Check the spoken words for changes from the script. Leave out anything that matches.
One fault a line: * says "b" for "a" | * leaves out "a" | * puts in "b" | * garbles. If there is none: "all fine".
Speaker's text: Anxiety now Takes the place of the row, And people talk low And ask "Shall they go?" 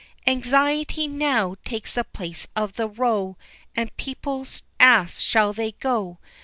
* leaves out "talk low And"